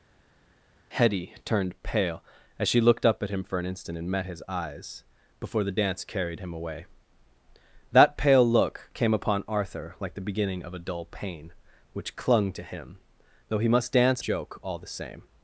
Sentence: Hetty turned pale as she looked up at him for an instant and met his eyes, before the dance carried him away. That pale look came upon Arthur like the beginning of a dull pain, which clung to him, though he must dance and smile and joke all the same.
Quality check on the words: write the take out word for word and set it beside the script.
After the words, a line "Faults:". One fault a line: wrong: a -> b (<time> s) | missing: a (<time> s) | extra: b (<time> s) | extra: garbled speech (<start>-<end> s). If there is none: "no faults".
Hetty turned pale as she looked up at him for an instant and met his eyes, before the dance carried him away. That pale look came upon Arthur like the beginning of a dull pain, which clung to him, though he must dance joke all the same.
Faults:
missing: and smile and (14.2 s)